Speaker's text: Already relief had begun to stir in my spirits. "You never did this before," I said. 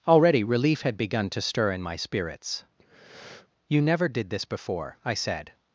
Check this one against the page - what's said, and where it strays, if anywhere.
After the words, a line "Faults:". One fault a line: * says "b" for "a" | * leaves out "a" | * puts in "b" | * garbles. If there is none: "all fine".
Already relief had begun to stir in my spirits. "You never did this before," I said.
Faults:
all fine